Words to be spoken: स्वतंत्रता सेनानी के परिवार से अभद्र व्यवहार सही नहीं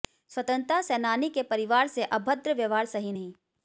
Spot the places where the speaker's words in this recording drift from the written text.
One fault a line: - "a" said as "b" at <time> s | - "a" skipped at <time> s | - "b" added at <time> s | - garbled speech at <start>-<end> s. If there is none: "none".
none